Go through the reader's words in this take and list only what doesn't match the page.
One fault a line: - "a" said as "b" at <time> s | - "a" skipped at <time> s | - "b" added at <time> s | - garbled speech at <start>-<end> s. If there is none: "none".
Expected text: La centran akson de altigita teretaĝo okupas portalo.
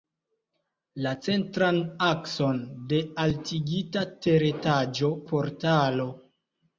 - "okupas" skipped at 5.1 s